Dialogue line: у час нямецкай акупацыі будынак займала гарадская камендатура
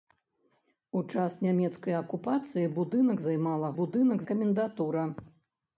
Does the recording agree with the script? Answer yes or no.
no